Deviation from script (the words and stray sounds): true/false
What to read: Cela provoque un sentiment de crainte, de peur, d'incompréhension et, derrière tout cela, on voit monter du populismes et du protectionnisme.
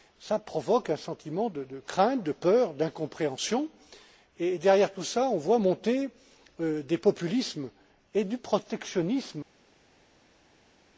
true